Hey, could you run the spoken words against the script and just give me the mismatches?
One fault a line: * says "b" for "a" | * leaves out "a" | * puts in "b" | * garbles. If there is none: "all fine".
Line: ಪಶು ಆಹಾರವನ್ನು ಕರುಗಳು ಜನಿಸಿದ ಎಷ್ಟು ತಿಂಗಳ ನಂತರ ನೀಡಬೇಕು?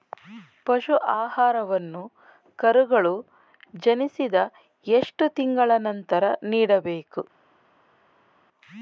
all fine